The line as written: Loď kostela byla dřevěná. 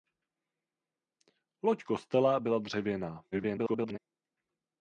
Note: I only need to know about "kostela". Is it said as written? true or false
true